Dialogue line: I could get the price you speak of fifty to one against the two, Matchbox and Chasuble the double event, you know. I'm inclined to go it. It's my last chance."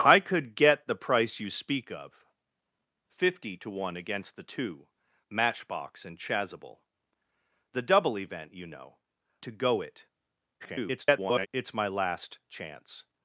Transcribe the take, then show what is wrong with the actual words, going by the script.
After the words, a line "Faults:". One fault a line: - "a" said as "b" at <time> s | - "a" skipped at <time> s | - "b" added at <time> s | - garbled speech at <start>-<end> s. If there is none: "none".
I could get the price you speak of fifty to one against the two, Matchbox and Chasuble the double event, you know. To go it. [garbled] It's my last chance."
Faults:
- "I'm inclined" skipped at 9.0 s
- garbled speech at 10.6-11.5 s